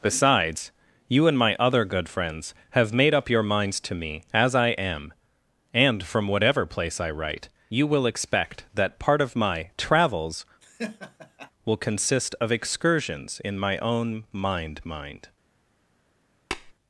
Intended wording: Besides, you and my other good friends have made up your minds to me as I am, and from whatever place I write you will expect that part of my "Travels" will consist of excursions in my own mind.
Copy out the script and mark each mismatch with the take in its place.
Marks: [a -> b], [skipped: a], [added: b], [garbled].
Besides, you and my other good friends have made up your minds to me as I am, and from whatever place I write you will expect that part of my "Travels" will consist of excursions in my own mind. [added: mind]